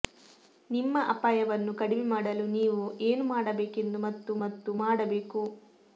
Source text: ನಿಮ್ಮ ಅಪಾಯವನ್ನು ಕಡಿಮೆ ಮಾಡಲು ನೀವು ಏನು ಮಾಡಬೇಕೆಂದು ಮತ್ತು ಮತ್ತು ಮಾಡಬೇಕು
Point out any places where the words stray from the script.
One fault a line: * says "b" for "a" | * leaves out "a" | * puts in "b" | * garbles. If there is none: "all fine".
all fine